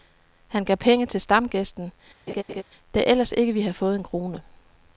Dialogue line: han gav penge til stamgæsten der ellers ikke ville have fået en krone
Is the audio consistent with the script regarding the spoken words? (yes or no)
yes